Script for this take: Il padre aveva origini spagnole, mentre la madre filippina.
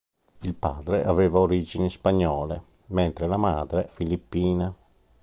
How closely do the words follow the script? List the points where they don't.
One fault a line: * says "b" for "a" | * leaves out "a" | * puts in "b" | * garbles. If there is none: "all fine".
all fine